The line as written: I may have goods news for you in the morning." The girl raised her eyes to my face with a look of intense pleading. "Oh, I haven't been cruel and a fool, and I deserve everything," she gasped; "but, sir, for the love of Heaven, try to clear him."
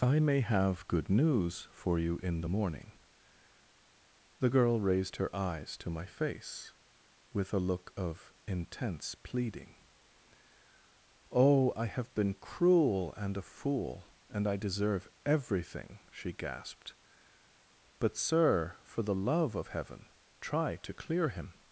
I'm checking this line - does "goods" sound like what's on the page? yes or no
no